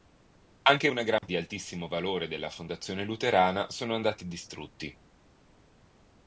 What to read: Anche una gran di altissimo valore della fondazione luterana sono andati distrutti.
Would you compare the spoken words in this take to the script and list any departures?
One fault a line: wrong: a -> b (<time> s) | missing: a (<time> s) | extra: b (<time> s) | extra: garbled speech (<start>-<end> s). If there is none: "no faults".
no faults